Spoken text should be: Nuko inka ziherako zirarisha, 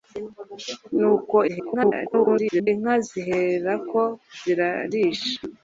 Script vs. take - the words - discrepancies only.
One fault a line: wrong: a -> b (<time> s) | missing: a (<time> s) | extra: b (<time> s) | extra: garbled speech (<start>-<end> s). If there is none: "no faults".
extra: garbled speech (1.5-2.7 s)